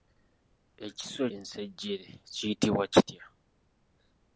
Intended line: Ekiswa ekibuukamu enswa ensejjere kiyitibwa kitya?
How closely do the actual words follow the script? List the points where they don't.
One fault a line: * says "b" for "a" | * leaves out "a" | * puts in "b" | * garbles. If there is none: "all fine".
* leaves out "ekibuukamu enswa"